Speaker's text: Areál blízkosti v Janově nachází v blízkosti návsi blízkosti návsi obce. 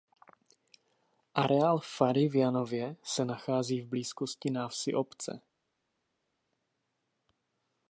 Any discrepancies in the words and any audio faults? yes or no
yes